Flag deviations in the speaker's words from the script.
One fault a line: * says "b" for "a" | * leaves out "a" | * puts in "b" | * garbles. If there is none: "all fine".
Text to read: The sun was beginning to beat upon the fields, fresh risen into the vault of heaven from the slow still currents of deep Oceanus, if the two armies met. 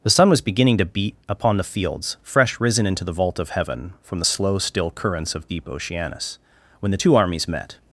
* says "when" for "if"